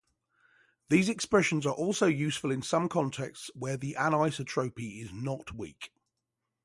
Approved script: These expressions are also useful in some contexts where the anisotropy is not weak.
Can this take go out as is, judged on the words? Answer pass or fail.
pass